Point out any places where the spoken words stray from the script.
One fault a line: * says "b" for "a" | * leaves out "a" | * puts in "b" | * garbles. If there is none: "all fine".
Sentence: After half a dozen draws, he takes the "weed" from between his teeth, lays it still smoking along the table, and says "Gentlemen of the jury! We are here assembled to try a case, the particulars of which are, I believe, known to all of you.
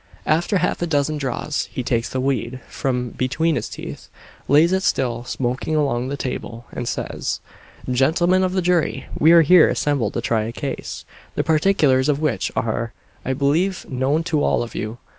all fine